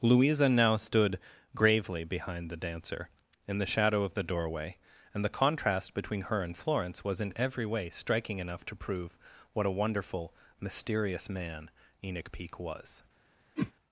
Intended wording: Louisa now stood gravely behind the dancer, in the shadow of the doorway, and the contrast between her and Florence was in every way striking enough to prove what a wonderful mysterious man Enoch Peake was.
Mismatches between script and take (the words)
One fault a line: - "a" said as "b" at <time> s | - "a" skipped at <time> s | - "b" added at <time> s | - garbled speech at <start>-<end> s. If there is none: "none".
none